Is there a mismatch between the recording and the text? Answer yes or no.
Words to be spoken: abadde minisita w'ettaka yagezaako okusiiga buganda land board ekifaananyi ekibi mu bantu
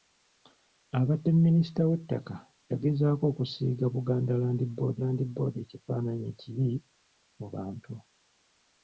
yes